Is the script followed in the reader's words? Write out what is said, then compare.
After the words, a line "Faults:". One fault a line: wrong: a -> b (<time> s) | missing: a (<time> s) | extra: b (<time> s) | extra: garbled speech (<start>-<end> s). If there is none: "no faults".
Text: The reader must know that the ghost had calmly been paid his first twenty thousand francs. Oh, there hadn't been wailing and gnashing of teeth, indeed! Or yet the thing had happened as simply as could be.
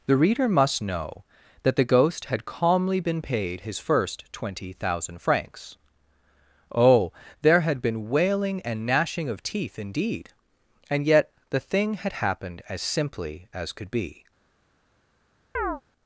The reader must know that the ghost had calmly been paid his first twenty thousand francs. Oh, there had been wailing and gnashing of teeth, indeed! And yet the thing had happened as simply as could be.
Faults:
wrong: hadn't -> had (7.6 s)
wrong: Or -> And (10.9 s)